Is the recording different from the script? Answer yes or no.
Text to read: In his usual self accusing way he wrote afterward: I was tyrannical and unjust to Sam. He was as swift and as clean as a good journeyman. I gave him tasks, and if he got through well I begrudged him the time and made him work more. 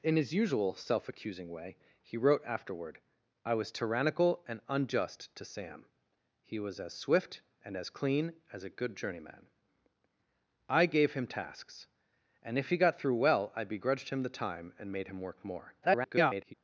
yes